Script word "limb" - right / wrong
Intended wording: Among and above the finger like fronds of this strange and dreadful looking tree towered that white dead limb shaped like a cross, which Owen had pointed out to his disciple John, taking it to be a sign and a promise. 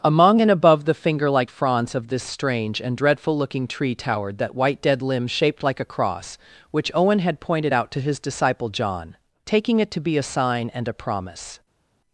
right